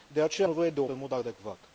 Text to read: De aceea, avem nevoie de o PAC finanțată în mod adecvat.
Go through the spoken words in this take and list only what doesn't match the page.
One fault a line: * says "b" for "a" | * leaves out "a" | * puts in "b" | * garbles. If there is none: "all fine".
* leaves out "avem"
* leaves out "PAC finanțată"